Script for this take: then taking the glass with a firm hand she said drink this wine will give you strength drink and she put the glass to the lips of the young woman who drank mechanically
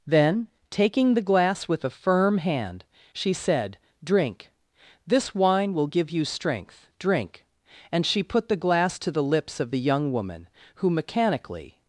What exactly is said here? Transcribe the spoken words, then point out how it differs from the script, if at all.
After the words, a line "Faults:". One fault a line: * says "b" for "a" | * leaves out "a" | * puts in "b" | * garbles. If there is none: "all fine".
then taking the glass with a firm hand she said drink this wine will give you strength drink and she put the glass to the lips of the young woman who mechanically
Faults:
* leaves out "drank"